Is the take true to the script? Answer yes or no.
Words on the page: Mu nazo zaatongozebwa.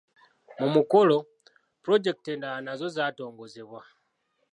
no